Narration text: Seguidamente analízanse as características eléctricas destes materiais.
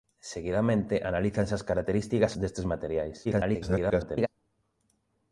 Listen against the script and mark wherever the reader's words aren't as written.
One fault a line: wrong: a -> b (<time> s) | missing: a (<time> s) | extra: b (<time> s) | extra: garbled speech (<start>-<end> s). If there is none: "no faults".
missing: eléctricas (2.3 s)
extra: garbled speech (3.2-4.3 s)